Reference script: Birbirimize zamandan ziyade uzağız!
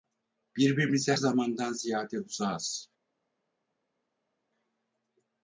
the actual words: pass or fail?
pass